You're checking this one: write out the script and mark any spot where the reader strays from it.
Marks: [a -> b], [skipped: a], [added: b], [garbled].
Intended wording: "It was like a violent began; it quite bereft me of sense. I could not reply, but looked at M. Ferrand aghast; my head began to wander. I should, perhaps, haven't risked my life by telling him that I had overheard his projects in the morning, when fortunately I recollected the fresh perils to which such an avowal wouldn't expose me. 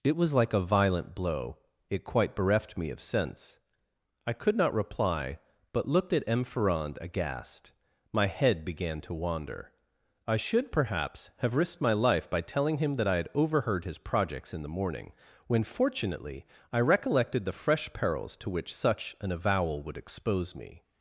"It was like a violent [began; -> blow] it quite bereft me of sense. I could not reply, but looked at M. Ferrand aghast; my head began to wander. I should, perhaps, [haven't -> have] risked my life by telling him that I had overheard his projects in the morning, when fortunately I recollected the fresh perils to which such an avowal [wouldn't -> would] expose me.